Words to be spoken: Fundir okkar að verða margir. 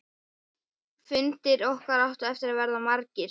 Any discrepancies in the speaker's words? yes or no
yes